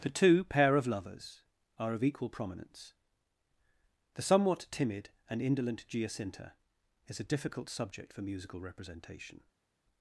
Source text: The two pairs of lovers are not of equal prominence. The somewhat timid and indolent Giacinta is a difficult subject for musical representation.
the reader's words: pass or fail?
fail